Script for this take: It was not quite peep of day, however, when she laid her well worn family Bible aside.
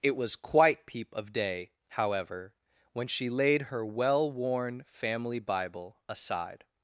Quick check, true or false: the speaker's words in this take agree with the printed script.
false